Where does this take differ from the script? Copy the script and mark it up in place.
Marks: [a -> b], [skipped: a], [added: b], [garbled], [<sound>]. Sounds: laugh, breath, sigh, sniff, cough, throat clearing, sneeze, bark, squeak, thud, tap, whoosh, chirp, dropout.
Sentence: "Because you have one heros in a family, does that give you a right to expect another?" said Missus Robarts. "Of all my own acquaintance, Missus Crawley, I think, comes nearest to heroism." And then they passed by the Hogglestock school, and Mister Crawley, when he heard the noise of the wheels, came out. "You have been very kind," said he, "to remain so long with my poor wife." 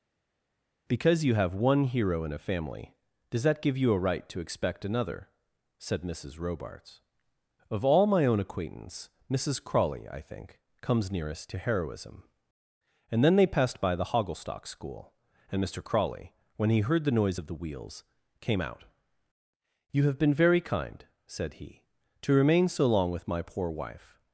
"Because you have one [heros -> hero] in a family, does that give you a right to expect another?" said Missus Robarts. "Of all my own acquaintance, Missus Crawley, I think, comes nearest to heroism." And then they passed by the Hogglestock school, and Mister Crawley, when he heard the noise of the wheels, came out. "You have been very kind," said he, "to remain so long with my poor wife."